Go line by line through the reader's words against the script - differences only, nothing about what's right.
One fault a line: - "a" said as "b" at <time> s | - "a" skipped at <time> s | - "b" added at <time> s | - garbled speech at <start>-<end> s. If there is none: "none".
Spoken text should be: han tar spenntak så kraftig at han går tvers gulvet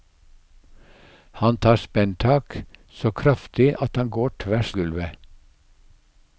none